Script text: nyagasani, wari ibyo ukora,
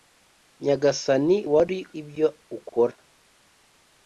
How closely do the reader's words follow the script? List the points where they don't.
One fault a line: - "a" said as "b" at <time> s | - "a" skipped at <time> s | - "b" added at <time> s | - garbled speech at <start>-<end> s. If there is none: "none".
none